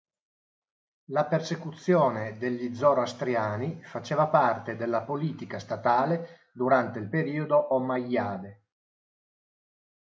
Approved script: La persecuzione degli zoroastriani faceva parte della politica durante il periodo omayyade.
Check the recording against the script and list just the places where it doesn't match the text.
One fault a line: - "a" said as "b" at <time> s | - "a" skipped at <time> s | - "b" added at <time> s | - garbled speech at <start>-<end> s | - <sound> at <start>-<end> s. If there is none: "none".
- "statale" added at 5.6 s